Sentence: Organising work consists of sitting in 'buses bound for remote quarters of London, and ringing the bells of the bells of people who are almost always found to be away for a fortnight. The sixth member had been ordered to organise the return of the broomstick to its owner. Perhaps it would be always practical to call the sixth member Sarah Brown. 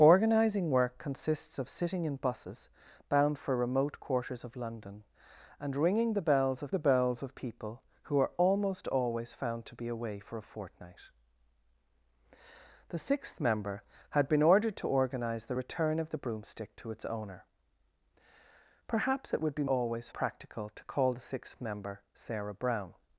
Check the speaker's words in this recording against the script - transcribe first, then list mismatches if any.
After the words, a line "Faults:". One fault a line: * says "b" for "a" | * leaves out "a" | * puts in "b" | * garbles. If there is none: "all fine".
Organising work consists of sitting in 'buses bound for remote quarters of London, and ringing the bells of the bells of people who are almost always found to be away for a fortnight. The sixth member had been ordered to organise the return of the broomstick to its owner. Perhaps it would be always practical to call the sixth member Sarah Brown.
Faults:
all fine